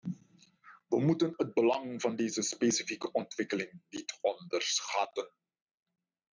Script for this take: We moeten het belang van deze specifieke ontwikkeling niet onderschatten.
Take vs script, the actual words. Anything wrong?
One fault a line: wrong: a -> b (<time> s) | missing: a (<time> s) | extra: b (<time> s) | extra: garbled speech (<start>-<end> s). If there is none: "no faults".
no faults